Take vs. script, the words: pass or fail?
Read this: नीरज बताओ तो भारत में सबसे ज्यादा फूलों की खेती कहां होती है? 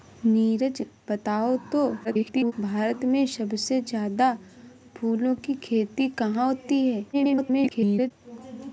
fail